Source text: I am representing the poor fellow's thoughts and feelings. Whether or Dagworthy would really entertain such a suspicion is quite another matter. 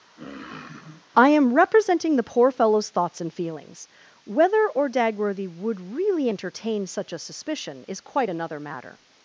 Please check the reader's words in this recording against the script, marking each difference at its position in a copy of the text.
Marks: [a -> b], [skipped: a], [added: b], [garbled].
I am representing the poor fellow's thoughts and feelings. Whether or Dagworthy would really entertain such a suspicion is quite another matter.